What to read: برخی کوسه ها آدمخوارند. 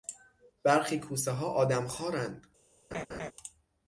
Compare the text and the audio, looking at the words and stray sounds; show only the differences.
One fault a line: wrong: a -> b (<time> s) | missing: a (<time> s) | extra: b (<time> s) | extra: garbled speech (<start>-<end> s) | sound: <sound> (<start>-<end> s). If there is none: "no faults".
sound: laugh (2.9-3.3 s)